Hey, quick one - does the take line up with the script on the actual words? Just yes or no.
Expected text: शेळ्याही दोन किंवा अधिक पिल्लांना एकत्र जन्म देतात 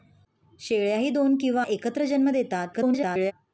no